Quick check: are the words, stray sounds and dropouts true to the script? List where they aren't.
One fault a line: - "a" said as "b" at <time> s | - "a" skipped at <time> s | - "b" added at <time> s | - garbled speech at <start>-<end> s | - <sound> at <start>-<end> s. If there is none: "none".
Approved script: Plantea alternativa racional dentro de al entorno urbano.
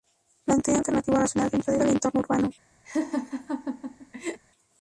- laugh at 2.8-4.4 s